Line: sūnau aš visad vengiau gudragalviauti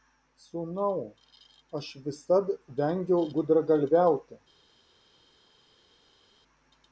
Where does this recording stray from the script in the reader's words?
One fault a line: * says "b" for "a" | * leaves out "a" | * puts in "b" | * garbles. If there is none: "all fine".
all fine